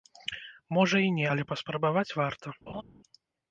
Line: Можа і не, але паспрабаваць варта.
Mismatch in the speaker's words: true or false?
false